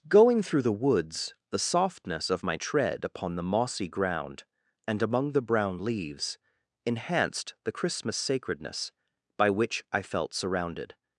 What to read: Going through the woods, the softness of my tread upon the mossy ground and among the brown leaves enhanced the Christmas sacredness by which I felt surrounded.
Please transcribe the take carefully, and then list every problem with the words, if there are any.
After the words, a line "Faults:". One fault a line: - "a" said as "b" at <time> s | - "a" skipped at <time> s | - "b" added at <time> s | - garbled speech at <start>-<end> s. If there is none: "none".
Going through the woods, the softness of my tread upon the mossy ground and among the brown leaves enhanced the Christmas sacredness by which I felt surrounded.
Faults:
none